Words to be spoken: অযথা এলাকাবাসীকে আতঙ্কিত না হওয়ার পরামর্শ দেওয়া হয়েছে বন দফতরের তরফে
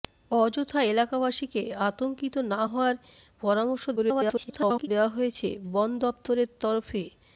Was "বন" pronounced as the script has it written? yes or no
yes